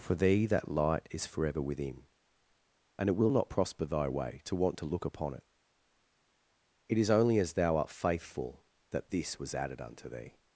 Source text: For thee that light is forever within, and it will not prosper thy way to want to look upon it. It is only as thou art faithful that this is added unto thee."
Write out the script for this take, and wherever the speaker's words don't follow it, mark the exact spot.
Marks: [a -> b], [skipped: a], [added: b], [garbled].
For thee that light is forever within, and it will not prosper thy way to want to look upon it. It is only as thou art faithful that this [is -> was] added unto thee."